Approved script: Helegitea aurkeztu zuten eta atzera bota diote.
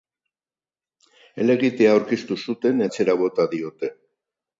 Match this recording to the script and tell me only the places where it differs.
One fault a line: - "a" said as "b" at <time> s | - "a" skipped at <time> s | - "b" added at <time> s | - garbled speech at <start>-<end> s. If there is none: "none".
- "eta" skipped at 2.8 s